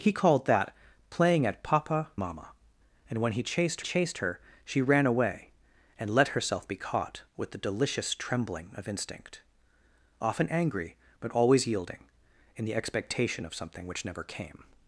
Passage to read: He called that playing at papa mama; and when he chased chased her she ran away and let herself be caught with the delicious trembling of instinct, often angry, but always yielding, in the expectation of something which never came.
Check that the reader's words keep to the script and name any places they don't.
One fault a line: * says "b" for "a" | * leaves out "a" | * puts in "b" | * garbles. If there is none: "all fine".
all fine